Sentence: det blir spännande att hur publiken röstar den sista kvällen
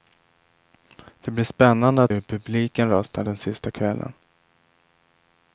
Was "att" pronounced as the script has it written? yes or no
yes